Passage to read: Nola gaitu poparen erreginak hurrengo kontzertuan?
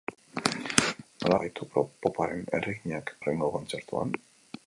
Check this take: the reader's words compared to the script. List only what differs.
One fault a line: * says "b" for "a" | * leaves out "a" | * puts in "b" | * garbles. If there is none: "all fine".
all fine